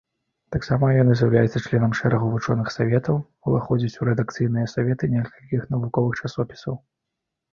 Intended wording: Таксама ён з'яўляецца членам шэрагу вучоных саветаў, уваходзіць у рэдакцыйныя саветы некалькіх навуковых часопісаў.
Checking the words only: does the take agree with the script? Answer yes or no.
yes